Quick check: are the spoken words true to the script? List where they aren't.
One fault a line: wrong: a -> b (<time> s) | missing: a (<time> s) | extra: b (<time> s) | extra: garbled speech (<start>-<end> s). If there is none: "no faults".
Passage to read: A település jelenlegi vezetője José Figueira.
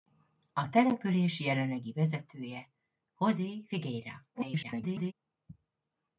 extra: garbled speech (4.3-5.1 s)